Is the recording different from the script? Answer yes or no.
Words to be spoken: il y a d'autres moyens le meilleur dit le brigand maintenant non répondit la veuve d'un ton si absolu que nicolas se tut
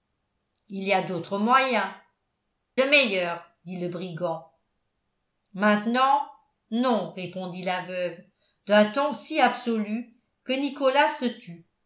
no